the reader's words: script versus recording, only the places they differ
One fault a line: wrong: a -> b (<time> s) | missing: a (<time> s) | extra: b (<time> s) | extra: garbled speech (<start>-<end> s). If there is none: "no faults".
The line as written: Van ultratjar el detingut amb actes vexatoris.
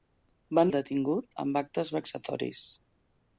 missing: ultratjar (0.7 s)